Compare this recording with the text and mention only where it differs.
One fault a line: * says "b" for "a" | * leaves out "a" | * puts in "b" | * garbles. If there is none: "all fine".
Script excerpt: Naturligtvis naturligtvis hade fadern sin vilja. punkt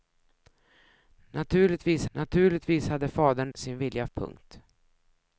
all fine